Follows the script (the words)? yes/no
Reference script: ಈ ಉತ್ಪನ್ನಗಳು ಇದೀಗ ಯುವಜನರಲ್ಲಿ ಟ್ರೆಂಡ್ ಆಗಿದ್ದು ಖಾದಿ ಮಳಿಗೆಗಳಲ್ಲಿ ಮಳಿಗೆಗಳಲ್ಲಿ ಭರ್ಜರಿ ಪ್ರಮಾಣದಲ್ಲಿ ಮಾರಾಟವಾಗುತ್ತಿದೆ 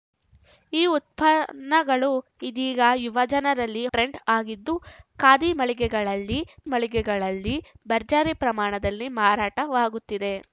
yes